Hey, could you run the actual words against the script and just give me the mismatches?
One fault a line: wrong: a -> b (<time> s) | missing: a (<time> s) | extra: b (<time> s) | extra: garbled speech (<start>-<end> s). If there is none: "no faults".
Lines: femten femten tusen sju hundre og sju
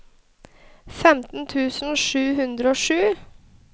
missing: femten (1.4 s)